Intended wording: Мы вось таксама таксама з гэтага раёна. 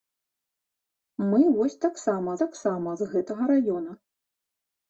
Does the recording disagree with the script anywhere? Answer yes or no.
no